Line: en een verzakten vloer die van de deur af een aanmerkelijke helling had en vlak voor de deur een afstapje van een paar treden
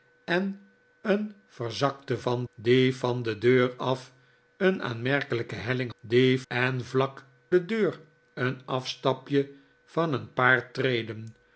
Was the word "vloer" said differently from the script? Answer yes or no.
yes